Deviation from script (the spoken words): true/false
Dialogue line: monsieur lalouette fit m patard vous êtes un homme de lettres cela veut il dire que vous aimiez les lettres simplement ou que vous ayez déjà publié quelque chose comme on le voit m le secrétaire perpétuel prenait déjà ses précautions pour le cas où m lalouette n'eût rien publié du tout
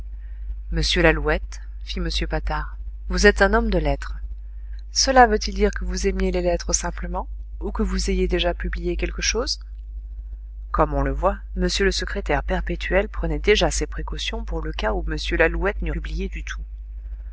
true